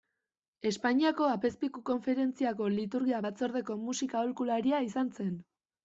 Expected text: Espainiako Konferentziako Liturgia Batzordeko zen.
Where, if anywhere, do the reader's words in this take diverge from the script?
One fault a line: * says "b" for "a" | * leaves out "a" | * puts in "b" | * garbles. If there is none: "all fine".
* puts in "Apezpiku"
* puts in "musika aholkularia izan"